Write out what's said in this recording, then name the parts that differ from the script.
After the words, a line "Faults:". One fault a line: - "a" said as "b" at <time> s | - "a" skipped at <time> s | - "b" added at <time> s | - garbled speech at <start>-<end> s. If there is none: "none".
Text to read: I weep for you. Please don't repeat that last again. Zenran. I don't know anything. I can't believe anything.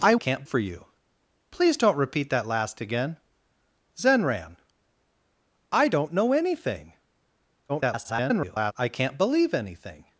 I can't for you. Please don't repeat that last again. Zenran. I don't know anything. [garbled] I can't believe anything.
Faults:
- "weep" said as "can't" at 0.1 s
- garbled speech at 7.7-8.7 s